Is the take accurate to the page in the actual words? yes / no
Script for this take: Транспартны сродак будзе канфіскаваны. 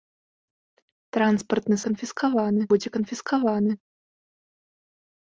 no